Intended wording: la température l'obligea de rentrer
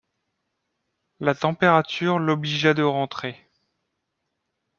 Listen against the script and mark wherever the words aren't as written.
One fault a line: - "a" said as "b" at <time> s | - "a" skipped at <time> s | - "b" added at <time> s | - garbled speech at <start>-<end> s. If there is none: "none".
none